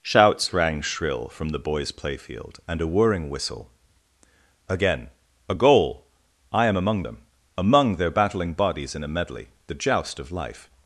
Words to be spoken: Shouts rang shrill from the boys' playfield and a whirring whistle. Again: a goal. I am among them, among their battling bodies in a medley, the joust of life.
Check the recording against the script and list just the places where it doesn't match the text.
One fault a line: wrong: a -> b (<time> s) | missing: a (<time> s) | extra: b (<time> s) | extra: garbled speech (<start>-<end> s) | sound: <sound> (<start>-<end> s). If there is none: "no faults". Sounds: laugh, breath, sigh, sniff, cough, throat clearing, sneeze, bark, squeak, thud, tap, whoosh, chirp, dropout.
no faults